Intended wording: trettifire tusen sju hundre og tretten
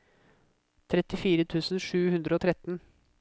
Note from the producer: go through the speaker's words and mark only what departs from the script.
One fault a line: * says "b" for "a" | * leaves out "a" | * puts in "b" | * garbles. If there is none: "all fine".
all fine